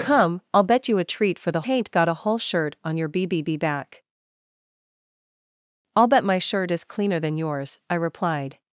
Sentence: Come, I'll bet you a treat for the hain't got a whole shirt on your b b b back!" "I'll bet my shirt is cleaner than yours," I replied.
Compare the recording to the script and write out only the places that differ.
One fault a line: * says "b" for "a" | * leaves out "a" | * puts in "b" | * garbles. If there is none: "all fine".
all fine